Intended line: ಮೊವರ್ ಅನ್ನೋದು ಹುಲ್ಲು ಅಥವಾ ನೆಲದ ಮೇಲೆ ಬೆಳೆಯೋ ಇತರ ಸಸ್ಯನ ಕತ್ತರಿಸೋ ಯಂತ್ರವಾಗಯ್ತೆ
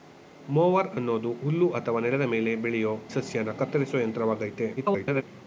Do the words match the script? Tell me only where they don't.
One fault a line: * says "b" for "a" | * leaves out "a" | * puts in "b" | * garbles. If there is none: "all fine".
* leaves out "ಇತರ"
* garbles